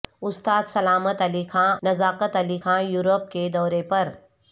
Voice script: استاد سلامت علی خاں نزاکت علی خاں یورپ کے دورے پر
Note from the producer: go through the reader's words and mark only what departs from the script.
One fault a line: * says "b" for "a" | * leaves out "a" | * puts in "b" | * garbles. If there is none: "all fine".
all fine